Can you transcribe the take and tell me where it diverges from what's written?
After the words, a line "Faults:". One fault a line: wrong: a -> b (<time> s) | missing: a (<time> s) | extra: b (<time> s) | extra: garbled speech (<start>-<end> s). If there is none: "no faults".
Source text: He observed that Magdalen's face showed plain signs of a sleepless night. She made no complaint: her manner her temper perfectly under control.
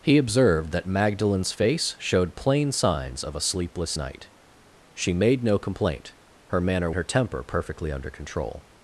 He observed that Magdalen's face showed plain signs of a sleepless night. She made no complaint: her manner her temper perfectly under control.
Faults:
no faults